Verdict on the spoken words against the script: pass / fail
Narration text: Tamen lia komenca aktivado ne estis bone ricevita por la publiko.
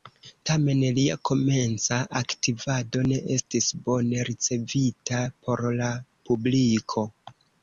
pass